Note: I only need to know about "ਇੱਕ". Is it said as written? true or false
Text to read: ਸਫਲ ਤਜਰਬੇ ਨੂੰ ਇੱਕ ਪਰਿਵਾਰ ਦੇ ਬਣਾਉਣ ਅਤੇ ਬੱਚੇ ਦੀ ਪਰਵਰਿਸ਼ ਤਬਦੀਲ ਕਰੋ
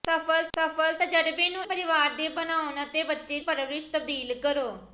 false